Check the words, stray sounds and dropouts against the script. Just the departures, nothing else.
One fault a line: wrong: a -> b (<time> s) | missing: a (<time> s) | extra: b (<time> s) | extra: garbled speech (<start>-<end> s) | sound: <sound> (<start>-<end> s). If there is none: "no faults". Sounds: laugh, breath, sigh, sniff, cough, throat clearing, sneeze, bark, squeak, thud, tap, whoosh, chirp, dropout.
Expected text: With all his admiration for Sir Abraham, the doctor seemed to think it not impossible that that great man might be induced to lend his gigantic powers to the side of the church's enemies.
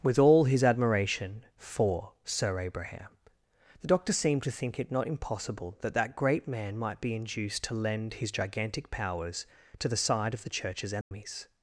sound: dropout (11.0-11.1 s)